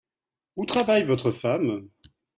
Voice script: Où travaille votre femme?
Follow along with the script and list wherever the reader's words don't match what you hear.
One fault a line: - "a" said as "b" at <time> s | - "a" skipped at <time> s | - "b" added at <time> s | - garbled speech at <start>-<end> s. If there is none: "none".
none